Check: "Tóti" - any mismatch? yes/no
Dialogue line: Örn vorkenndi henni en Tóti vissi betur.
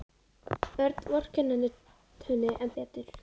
yes